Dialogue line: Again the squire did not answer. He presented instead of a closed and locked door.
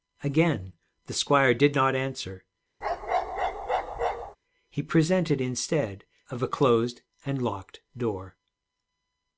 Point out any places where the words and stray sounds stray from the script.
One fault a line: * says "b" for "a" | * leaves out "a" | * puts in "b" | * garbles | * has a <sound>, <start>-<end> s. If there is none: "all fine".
* has a bark, 2.8-4.4 s